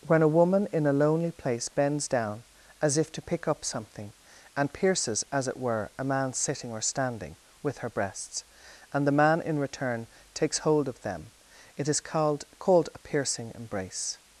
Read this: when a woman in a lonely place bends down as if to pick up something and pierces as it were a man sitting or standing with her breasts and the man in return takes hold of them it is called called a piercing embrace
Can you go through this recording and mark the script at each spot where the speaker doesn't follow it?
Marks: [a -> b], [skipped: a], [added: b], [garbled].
when a woman in a lonely place bends down as if to pick up something and pierces as it were a man sitting or standing with her breasts and the man in return takes hold of them it is called called a piercing embrace